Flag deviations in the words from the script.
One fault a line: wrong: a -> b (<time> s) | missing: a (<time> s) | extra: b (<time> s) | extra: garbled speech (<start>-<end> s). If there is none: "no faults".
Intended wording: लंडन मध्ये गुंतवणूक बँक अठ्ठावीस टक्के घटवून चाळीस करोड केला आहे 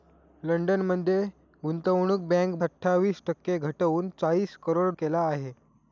no faults